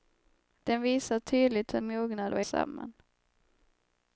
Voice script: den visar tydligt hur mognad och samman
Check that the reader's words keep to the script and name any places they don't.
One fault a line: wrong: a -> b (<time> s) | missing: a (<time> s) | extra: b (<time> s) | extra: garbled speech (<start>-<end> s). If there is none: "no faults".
no faults